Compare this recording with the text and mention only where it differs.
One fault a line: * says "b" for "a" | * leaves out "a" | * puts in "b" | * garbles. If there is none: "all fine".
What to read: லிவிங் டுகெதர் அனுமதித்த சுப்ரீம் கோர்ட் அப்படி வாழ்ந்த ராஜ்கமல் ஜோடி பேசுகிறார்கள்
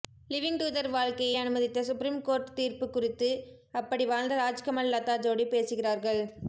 * puts in "வாழ்க்கையை"
* puts in "தீர்ப்பு குறித்து"
* puts in "லதா"